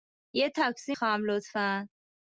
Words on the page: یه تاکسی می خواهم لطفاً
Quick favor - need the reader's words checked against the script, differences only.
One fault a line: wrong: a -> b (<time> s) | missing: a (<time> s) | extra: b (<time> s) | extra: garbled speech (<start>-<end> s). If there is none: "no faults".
missing: می (0.9 s)